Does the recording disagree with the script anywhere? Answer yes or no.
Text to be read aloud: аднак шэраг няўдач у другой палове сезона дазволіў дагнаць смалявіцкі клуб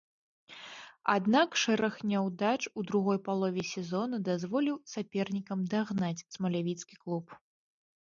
yes